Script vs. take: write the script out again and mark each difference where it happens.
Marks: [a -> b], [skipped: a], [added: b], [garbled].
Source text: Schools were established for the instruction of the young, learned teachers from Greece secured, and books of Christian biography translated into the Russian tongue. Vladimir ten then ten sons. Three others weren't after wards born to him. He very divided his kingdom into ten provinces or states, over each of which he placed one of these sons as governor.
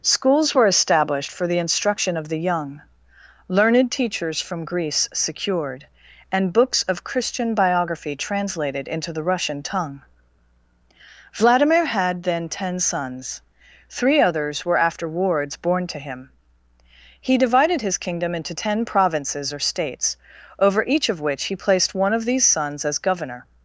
Schools were established for the instruction of the young, learned teachers from Greece secured, and books of Christian biography translated into the Russian tongue. Vladimir [ten -> had] then ten sons. Three others [weren't -> were] after wards born to him. He [skipped: very] divided his kingdom into ten provinces or states, over each of which he placed one of these sons as governor.